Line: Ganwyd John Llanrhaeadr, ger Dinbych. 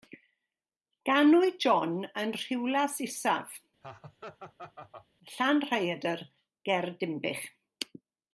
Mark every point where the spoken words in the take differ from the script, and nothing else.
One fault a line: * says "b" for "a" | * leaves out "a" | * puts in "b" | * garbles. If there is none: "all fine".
* puts in "yn Rhiwlas Isaf"